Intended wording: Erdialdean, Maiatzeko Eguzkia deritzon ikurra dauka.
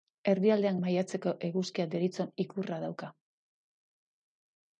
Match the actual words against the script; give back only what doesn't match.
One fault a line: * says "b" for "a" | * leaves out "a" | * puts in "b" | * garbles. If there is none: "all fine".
all fine